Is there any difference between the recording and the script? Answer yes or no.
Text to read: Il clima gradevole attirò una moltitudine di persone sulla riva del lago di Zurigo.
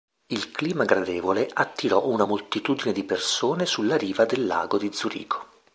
no